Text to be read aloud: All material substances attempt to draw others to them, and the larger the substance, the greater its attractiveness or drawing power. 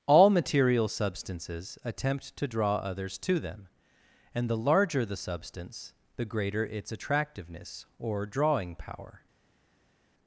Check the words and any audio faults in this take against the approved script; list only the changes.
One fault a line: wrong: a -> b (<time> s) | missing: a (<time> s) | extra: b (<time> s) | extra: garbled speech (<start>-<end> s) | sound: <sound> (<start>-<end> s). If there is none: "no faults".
no faults